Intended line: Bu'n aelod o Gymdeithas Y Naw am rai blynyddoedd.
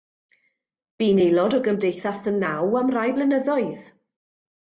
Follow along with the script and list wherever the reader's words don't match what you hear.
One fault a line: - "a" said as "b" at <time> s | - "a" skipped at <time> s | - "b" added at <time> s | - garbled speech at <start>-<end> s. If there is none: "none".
none